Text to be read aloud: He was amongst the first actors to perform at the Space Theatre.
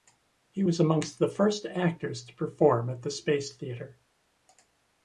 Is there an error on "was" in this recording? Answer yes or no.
no